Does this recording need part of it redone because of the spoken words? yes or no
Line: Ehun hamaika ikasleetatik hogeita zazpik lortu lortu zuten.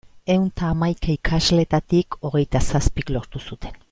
yes